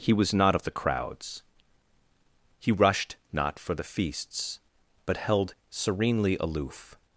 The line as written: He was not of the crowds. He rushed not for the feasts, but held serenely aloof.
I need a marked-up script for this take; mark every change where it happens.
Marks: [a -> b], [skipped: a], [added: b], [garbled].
He was not of the crowds. He rushed not for the feasts, but held serenely aloof.